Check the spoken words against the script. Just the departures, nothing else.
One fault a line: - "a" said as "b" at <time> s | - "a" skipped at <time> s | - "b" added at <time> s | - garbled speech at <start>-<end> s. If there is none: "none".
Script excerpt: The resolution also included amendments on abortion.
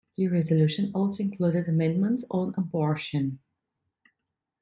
none